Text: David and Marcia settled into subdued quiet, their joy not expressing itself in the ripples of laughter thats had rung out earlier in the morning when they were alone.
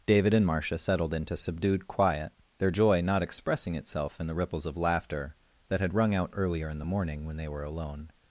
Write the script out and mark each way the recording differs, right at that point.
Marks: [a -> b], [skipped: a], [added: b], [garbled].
David and Marcia settled into subdued quiet, their joy not expressing itself in the ripples of laughter [thats -> that] had rung out earlier in the morning when they were alone.